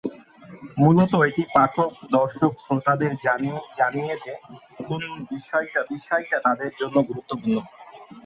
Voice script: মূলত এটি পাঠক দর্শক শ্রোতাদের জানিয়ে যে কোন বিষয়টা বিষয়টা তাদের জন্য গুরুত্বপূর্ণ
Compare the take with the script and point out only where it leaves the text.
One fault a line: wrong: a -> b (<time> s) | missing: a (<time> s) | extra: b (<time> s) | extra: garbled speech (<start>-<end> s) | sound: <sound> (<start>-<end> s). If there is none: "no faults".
no faults